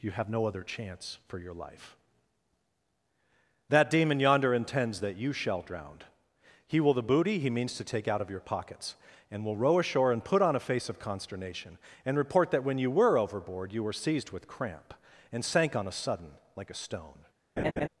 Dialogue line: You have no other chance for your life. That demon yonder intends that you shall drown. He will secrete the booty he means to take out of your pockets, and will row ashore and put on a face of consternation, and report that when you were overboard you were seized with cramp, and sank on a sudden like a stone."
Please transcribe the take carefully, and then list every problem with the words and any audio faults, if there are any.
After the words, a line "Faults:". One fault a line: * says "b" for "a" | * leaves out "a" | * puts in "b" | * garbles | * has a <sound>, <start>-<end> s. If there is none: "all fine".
You have no other chance for your life. That demon yonder intends that you shall drown. He will the booty he means to take out of your pockets, and will row ashore and put on a face of consternation, and report that when you were overboard you were seized with cramp, and sank on a sudden like a stone."
Faults:
* leaves out "secrete"
* has a laugh, 17.6-17.9 s